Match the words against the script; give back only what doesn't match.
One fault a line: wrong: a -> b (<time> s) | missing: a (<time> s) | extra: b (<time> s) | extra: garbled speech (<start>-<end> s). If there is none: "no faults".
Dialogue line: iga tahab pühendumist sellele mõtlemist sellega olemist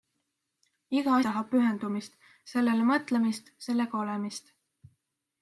no faults